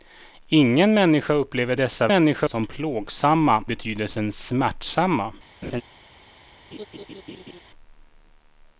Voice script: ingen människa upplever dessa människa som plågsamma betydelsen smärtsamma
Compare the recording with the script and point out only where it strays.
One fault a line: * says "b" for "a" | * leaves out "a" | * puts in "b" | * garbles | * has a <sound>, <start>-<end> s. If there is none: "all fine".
* has a laugh, 5.6-5.8 s
* has a laugh, 6.7-7.6 s